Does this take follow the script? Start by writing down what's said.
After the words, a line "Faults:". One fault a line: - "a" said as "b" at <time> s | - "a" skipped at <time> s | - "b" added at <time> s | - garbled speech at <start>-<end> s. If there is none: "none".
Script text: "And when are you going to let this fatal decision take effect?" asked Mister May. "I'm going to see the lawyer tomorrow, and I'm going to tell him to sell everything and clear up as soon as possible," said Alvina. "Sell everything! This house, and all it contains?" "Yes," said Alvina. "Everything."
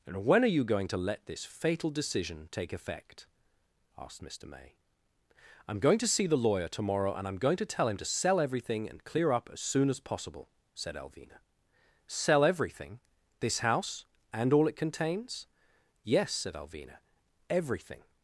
"And when are you going to let this fatal decision take effect?" asked Mister May. "I'm going to see the lawyer tomorrow, and I'm going to tell him to sell everything and clear up as soon as possible," said Alvina. "Sell everything! This house, and all it contains?" "Yes," said Alvina. "Everything."
Faults:
none